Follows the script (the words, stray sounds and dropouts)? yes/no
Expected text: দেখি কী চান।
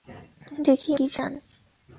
yes